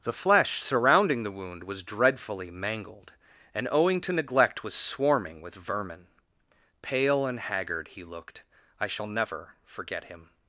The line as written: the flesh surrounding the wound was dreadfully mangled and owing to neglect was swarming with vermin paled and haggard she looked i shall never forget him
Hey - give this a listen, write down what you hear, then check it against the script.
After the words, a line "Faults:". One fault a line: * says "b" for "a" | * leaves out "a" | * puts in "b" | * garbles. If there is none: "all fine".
the flesh surrounding the wound was dreadfully mangled and owing to neglect was swarming with vermin pale and haggard he looked i shall never forget him
Faults:
* says "pale" for "paled"
* says "he" for "she"